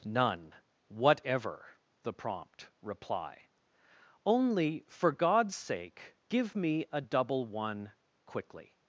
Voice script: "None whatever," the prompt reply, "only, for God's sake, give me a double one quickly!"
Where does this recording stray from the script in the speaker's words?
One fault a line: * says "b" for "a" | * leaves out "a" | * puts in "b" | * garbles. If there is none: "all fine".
all fine